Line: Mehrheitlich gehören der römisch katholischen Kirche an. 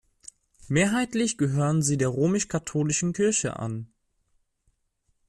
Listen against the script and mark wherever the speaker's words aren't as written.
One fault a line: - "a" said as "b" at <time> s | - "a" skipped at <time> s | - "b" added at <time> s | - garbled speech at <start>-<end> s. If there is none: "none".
- "sie" added at 1.8 s